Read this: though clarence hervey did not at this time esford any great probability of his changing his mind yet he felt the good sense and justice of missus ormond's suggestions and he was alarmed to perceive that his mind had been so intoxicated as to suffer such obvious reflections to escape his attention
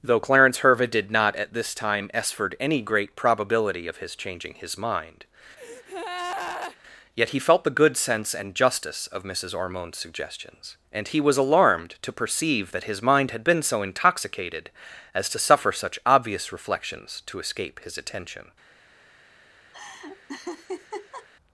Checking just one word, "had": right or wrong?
right